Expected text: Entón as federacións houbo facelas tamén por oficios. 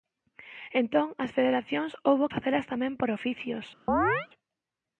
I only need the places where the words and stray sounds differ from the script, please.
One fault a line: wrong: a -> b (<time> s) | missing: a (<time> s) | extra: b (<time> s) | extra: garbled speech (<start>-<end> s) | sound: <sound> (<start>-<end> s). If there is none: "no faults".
sound: chirp (3.9-4.3 s)